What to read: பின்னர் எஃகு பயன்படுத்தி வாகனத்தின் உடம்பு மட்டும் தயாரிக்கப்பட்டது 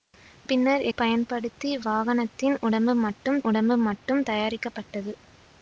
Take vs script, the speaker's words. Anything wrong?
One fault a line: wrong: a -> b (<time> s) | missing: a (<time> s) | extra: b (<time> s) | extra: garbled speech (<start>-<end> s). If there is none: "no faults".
missing: எஃகு (0.8 s)
extra: உடம்பு மட்டும் (3.4 s)